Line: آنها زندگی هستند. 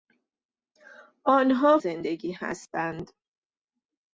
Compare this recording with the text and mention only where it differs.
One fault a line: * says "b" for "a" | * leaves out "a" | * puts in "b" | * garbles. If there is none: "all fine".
all fine